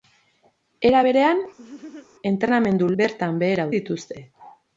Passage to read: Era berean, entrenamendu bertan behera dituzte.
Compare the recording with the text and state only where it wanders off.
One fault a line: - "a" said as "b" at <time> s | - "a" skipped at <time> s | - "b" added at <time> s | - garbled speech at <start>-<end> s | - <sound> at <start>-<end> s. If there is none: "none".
- laugh at 1.6-2.1 s